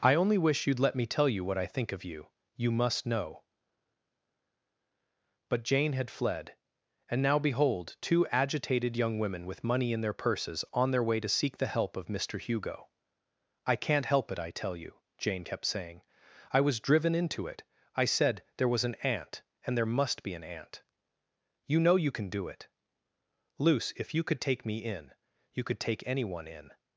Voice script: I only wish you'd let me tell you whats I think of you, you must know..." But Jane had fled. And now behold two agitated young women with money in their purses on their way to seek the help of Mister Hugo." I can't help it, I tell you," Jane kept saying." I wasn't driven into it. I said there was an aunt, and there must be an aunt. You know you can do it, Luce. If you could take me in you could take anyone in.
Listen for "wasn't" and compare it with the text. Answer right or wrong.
wrong